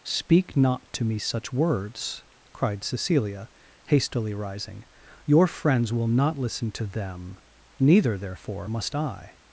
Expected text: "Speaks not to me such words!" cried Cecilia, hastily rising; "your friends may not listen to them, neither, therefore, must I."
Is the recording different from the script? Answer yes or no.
yes